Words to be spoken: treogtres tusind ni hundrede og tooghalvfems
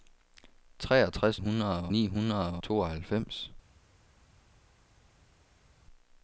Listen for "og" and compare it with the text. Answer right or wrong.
wrong